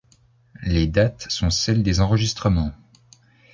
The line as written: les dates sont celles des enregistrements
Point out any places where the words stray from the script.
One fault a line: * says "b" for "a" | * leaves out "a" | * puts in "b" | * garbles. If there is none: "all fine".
all fine